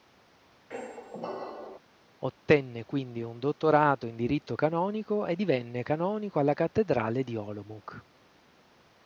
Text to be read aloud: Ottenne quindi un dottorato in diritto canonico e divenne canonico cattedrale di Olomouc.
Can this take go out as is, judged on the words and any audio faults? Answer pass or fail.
fail